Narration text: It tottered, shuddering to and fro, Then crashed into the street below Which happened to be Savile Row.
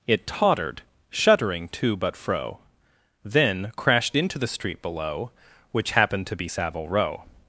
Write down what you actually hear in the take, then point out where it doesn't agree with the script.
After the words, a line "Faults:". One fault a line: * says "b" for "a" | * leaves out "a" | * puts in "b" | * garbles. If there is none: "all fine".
It tottered, shuddering to but fro, Then crashed into the street below Which happened to be Savile Row.
Faults:
* says "but" for "and"